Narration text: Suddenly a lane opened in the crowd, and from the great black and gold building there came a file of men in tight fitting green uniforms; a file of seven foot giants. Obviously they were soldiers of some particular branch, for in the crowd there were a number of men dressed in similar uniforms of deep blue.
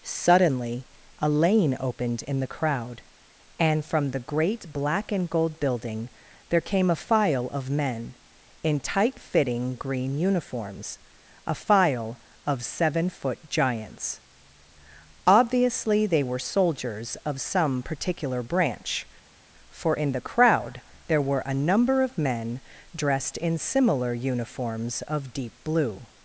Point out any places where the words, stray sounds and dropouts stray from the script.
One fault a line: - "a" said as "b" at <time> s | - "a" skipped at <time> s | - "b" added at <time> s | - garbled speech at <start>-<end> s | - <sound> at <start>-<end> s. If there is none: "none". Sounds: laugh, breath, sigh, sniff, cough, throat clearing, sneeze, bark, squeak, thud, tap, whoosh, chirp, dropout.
none